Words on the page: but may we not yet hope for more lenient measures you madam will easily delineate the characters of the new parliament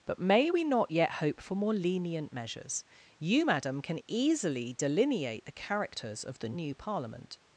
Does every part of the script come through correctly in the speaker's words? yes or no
no